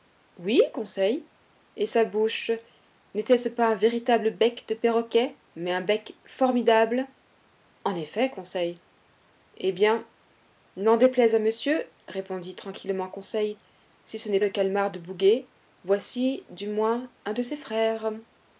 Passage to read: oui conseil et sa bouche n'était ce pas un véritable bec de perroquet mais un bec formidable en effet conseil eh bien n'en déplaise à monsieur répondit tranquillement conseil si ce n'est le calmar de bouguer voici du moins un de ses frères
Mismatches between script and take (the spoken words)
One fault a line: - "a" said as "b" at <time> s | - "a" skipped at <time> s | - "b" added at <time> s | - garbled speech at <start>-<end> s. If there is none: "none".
none